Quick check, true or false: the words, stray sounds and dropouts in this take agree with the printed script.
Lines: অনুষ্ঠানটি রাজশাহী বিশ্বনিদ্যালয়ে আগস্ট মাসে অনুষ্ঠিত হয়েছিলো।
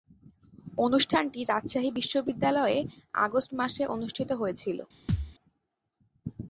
false